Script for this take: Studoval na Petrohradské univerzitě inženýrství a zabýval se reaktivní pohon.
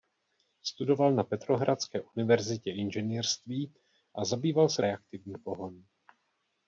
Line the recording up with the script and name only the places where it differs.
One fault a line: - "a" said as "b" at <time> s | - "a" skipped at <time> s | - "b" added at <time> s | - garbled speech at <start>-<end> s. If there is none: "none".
none